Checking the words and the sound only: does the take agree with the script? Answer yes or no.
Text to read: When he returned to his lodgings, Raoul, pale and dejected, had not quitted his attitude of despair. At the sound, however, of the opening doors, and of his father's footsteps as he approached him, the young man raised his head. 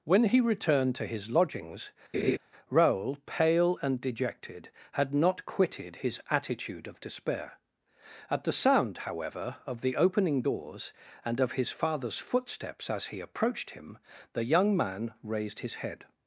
no